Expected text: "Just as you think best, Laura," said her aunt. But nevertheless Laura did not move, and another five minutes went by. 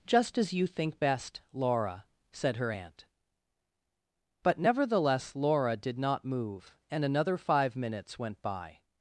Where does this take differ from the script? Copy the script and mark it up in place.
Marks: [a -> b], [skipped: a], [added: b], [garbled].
"Just as you think best, Laura," said her aunt. But nevertheless Laura did not move, and another five minutes went by.